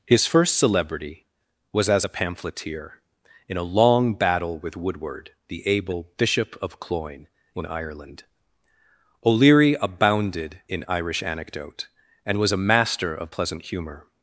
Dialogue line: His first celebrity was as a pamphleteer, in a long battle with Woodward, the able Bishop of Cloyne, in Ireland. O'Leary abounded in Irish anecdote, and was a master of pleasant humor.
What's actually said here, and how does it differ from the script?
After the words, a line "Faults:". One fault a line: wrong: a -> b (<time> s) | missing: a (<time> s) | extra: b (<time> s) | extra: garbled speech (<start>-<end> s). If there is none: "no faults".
His first celebrity was as a pamphleteer, in a long battle with Woodward, the able Bishop of Cloyne, in Ireland. O'Leary abounded in Irish anecdote, and was a master of pleasant humor.
Faults:
no faults